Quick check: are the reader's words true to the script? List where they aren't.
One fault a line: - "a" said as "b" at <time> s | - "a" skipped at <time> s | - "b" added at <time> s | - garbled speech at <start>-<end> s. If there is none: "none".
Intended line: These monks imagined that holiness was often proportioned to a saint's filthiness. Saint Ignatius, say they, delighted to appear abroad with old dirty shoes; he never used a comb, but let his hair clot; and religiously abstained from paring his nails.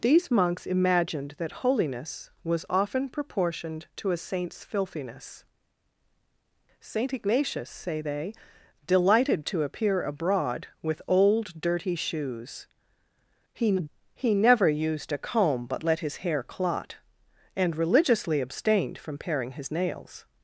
- "he" added at 14.2 s